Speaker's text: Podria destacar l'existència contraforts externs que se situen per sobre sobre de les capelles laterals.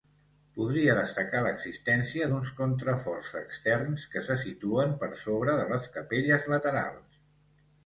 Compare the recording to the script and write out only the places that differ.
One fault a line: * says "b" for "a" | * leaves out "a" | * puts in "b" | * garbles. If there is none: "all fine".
* puts in "d'uns"
* leaves out "sobre"